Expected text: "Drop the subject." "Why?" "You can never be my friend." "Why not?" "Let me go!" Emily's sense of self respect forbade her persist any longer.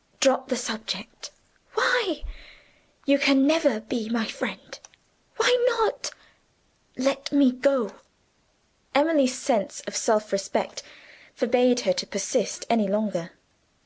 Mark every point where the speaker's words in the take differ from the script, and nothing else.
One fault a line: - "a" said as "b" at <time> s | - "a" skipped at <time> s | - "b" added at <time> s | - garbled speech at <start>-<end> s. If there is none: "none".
- "to" added at 11.9 s